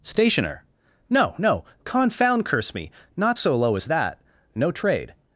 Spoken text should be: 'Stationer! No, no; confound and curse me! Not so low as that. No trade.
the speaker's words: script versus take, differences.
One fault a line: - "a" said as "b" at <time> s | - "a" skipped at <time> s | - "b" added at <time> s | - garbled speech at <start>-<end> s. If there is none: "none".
- "and" skipped at 2.5 s